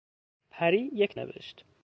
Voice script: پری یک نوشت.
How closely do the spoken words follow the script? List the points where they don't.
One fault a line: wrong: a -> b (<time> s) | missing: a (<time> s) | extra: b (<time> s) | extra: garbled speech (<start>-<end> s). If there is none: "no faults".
no faults